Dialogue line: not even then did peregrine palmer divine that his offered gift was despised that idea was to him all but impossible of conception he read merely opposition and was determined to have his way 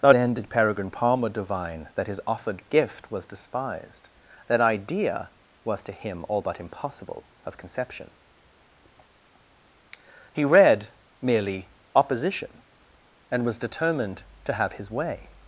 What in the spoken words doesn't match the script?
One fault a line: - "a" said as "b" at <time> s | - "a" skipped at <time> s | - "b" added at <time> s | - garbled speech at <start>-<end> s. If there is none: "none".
- "even" skipped at 0.1 s